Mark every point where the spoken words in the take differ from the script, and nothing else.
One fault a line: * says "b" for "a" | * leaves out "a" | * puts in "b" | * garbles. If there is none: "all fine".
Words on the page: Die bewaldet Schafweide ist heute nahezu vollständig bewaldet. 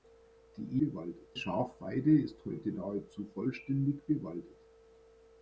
all fine